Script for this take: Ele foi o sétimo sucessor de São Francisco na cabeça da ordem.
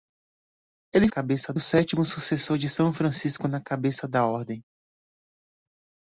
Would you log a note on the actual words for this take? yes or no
yes